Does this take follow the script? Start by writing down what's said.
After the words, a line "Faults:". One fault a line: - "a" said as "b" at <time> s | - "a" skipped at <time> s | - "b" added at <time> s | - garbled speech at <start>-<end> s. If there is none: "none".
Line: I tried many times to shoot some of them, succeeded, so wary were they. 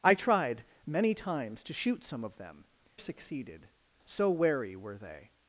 I tried many times to shoot some of them, succeeded, so wary were they.
Faults:
none